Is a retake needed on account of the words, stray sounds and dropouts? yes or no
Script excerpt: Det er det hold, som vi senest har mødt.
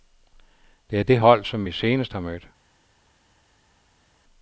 no